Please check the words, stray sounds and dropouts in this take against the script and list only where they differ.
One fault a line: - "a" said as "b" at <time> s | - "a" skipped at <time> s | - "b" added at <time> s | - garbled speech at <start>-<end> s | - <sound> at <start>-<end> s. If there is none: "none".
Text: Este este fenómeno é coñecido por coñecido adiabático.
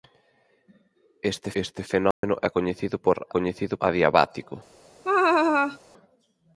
- dropout at 2.1-2.2 s
- laugh at 5.0-5.8 s